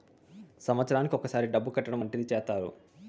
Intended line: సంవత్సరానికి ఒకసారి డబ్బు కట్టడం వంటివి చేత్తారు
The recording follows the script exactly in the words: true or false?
true